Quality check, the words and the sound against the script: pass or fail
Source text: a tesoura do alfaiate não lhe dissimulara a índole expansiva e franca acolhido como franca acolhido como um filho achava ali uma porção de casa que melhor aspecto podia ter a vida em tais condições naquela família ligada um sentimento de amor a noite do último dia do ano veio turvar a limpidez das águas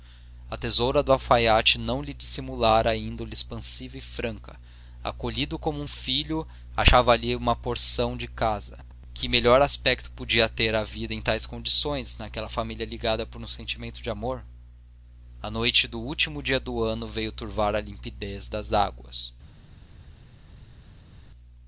fail